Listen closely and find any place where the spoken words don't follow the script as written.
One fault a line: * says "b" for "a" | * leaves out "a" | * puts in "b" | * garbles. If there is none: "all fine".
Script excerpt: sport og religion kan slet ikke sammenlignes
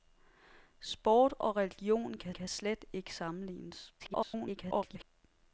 * puts in "kan"
* garbles